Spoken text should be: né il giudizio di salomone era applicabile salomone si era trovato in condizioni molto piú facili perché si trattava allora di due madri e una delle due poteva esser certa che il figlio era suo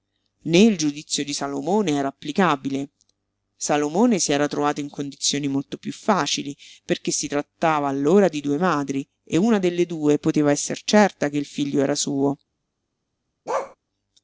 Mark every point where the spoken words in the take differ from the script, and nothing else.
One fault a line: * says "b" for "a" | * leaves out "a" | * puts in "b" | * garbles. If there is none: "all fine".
all fine